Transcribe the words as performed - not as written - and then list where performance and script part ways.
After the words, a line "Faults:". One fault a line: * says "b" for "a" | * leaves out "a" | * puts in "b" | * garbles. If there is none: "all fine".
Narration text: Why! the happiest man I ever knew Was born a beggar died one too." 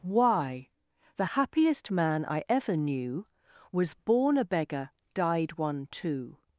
Why! the happiest man I ever knew Was born a beggar died one too."
Faults:
all fine